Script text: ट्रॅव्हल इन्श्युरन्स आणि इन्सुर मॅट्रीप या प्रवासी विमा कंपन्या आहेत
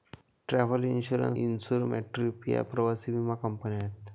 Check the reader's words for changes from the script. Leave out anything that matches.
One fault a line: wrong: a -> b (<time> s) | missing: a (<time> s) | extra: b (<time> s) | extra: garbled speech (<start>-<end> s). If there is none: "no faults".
missing: आणि (1.4 s)